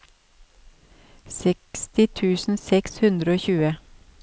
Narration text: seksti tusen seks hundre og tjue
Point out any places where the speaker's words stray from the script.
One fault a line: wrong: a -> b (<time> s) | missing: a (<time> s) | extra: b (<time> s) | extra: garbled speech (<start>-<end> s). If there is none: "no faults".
no faults